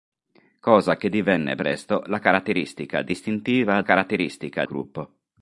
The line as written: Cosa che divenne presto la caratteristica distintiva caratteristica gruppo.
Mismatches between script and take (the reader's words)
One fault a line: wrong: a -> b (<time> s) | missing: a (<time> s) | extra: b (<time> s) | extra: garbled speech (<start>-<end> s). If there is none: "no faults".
no faults